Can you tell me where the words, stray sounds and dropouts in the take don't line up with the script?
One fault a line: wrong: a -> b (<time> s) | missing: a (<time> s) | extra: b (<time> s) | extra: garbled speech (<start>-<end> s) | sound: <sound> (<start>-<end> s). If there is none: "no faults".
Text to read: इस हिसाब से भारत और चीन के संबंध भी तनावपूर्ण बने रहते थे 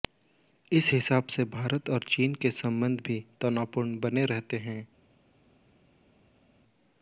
wrong: थे -> हैं (4.6 s)